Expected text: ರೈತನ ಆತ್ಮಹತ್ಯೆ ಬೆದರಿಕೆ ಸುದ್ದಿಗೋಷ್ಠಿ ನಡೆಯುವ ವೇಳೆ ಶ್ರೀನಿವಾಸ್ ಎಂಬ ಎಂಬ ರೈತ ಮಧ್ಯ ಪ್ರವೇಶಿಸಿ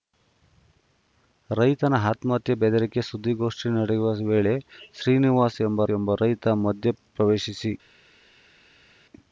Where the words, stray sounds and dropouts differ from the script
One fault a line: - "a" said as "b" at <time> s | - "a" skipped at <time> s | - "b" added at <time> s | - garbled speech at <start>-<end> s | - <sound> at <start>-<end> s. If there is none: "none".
none